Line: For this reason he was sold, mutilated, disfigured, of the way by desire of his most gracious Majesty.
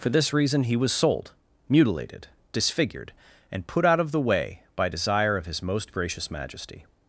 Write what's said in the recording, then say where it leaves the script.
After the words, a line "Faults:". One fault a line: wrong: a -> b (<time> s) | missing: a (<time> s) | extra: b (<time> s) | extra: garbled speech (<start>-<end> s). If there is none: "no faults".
For this reason he was sold, mutilated, disfigured, and put out of the way by desire of his most gracious Majesty.
Faults:
extra: and put out (3.5 s)